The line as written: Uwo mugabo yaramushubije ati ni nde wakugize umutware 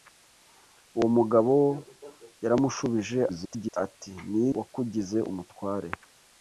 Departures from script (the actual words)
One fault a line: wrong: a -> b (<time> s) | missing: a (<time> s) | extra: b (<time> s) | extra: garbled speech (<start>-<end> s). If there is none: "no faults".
extra: garbled speech (3.3-3.8 s)
missing: nde (4.5 s)